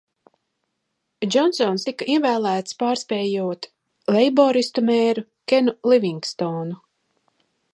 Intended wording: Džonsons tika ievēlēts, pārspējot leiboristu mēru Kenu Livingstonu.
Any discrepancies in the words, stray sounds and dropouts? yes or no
no